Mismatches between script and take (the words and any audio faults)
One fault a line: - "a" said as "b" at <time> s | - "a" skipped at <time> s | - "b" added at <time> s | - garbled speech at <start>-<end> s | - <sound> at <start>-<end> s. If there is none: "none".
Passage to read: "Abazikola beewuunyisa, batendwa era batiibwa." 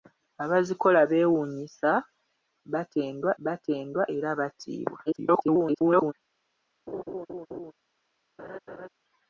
- "batendwa" added at 3.4 s
- garbled speech at 5.1-6.1 s
- laugh at 6.9-7.7 s
- laugh at 8.4-8.9 s